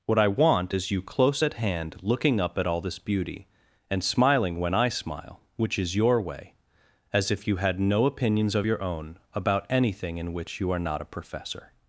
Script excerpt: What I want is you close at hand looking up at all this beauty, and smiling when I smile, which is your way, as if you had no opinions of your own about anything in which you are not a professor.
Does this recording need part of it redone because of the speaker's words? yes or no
no